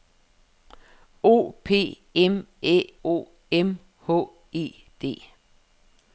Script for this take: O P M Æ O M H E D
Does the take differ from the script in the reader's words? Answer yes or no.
no